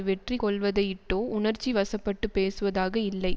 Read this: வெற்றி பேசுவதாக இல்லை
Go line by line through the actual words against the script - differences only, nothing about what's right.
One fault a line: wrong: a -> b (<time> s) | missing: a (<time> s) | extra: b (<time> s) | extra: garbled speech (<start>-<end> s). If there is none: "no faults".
extra: கொள்வதையிட்டோ உணர்ச்சி வசப்பட்டுப் (0.4 s)